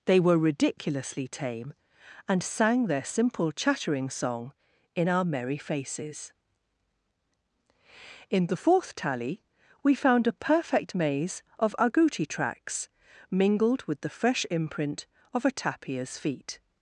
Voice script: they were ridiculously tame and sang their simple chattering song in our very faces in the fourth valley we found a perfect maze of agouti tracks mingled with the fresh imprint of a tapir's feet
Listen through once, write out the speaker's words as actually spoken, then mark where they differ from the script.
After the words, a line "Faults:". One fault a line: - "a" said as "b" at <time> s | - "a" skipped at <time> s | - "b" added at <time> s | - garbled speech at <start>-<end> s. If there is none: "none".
they were ridiculously tame and sang their simple chattering song in our merry faces in the fourth tally we found a perfect maze of agouti tracks mingled with the fresh imprint of a tapir's feet
Faults:
- "very" said as "merry" at 5.2 s
- "valley" said as "tally" at 9.0 s